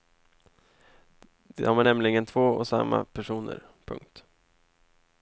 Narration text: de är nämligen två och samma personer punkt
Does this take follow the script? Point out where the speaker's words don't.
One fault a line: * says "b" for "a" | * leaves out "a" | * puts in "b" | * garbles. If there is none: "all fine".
all fine